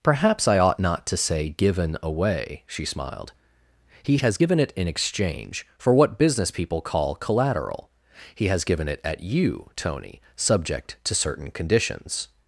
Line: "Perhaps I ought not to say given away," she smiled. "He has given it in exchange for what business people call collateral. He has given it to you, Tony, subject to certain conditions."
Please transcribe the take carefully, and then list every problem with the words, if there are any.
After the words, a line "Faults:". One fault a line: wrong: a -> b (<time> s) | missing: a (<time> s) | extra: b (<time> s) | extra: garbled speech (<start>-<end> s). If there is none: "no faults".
"Perhaps I ought not to say given away," she smiled. "He has given it in exchange for what business people call collateral. He has given it at you, Tony, subject to certain conditions."
Faults:
wrong: to -> at (9.0 s)